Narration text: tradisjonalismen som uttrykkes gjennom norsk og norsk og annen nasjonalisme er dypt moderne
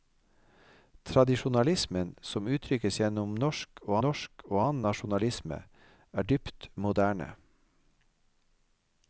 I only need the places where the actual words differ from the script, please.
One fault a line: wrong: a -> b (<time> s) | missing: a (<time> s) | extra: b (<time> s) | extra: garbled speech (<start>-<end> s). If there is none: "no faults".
no faults